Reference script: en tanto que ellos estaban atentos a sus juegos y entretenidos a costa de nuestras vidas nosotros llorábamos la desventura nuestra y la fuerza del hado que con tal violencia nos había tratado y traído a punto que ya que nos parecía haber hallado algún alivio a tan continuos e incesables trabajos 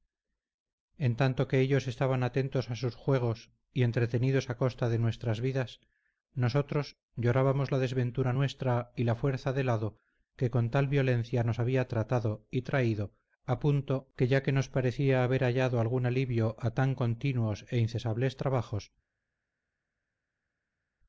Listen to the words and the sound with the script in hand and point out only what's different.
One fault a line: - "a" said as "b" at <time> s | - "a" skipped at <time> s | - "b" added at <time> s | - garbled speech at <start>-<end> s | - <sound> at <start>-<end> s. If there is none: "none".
none